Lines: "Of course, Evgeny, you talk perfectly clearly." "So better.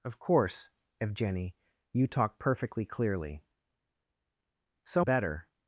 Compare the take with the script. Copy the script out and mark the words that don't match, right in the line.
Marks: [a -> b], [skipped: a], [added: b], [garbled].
"Of course, Evgeny, you talk perfectly clearly." "So better.